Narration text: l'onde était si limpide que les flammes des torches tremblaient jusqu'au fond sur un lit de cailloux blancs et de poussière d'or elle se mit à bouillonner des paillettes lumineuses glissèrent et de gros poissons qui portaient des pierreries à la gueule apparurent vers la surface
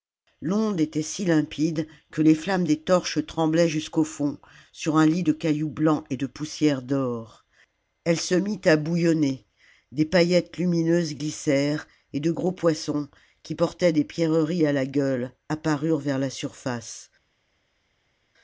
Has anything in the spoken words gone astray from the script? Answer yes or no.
no